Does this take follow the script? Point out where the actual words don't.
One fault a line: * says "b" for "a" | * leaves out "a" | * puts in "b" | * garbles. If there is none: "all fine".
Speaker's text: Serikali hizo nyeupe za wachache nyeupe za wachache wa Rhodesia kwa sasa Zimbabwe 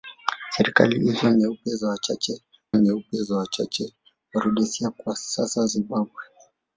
all fine